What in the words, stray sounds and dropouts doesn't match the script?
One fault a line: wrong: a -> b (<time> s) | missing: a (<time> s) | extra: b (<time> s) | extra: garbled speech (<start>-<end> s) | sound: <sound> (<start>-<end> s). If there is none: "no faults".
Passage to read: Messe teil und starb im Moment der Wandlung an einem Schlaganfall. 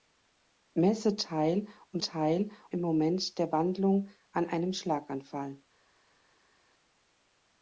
wrong: starb -> teil (2.0 s)